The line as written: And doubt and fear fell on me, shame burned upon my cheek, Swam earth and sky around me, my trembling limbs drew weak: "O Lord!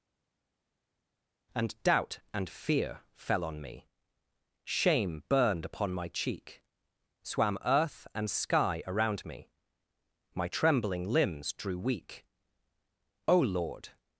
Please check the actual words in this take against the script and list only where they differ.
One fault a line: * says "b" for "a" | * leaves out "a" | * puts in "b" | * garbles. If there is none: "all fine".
all fine